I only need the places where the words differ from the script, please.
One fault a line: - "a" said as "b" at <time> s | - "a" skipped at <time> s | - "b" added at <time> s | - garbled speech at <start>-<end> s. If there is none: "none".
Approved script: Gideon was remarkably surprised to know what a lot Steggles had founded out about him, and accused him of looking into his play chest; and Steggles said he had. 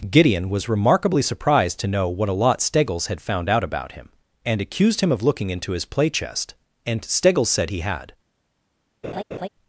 - "founded" said as "found" at 3.2 s